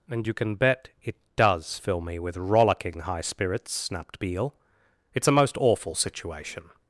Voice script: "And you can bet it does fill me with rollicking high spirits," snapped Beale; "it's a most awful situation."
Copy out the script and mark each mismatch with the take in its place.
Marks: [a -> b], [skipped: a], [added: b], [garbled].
"And you can bet it does fill me with rollicking high spirits," snapped Beale; "it's a most awful situation."